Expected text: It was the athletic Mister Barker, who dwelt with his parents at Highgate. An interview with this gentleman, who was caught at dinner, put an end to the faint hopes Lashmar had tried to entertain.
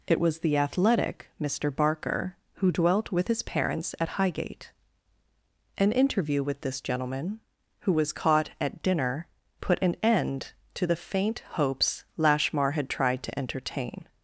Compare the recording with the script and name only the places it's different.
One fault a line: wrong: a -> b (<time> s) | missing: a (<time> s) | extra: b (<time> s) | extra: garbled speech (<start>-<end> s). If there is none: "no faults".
no faults